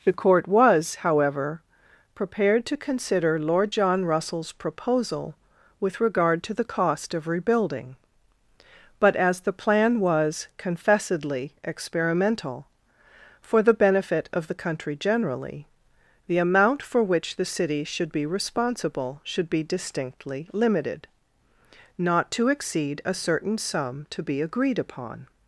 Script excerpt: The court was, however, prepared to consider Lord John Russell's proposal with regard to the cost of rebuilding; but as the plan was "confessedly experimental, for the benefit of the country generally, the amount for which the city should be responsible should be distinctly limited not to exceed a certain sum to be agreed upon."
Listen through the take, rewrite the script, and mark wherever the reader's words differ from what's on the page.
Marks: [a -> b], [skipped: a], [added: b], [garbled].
The court was, however, prepared to consider Lord John Russell's proposal with regard to the cost of rebuilding; but as the plan was "confessedly experimental, for the benefit of the country generally, the amount for which the city should be responsible should be distinctly limited not to exceed a certain sum to be agreed upon."